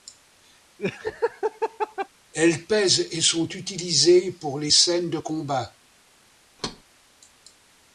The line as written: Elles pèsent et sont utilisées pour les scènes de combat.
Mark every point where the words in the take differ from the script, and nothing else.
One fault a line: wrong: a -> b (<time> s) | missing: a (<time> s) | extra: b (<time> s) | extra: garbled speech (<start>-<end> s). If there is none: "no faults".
no faults